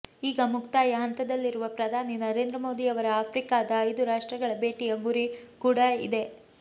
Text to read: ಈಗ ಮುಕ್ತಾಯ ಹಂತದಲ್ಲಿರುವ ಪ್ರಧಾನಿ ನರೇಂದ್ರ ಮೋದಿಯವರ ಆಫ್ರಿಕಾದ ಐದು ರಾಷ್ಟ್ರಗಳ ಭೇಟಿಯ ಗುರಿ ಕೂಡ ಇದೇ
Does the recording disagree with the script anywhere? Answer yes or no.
no